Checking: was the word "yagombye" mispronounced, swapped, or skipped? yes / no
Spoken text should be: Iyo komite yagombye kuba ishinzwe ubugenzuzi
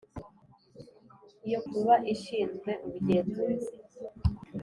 yes